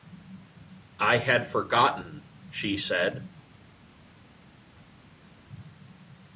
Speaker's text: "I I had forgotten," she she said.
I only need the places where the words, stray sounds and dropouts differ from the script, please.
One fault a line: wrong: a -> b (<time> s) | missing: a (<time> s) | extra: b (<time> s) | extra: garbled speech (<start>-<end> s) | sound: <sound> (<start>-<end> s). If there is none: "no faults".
missing: I (1.2 s)
missing: she (2.8 s)